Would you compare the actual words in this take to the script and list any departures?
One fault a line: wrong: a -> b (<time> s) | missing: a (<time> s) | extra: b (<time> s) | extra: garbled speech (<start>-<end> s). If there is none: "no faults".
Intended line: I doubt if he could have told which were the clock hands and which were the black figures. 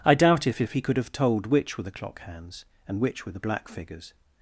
extra: if (0.6 s)